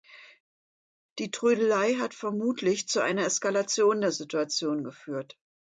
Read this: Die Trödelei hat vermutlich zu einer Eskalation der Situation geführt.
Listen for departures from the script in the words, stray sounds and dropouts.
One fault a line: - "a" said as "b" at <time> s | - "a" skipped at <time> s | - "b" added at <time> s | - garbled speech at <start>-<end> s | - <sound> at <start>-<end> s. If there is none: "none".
none